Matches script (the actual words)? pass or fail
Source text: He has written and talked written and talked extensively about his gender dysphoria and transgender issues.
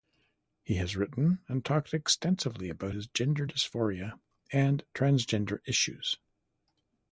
fail